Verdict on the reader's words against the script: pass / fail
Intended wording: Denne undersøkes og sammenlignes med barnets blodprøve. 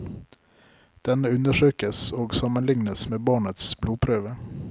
pass